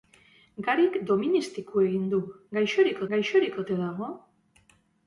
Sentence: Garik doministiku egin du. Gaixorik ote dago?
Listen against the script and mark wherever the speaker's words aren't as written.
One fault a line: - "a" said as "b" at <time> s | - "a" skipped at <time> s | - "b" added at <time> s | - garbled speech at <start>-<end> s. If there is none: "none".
- "gaixorik" added at 3.2 s